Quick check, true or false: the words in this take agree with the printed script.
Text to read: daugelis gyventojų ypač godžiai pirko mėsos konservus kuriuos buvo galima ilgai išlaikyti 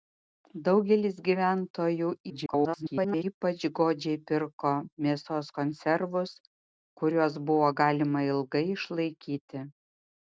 false